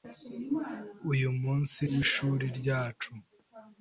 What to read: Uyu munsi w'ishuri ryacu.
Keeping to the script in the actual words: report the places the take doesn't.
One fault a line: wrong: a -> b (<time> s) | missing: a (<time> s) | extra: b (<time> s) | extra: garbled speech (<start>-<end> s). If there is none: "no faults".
no faults